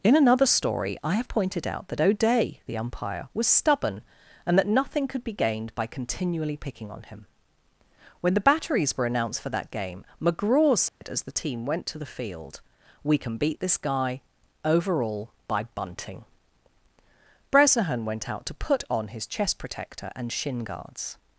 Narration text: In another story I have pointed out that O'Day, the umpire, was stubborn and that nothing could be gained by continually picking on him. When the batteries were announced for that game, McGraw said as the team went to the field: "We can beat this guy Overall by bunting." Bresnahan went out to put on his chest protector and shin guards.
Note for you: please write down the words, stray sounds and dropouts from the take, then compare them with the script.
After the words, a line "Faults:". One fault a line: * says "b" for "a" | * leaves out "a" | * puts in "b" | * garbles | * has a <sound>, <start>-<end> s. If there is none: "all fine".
In another story I have pointed out that O'Day, the umpire, was stubborn and that nothing could be gained by continually picking on him. When the batteries were announced for that game, McGraw said as the team went to the field: "We can beat this guy Overall by bunting." Bresnahan went out to put on his chest protector and shin guards.
Faults:
* has a dropout, 10.9-11.0 s